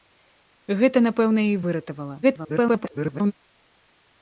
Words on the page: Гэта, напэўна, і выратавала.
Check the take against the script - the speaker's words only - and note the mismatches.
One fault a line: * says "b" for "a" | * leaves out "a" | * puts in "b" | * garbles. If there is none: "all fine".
* garbles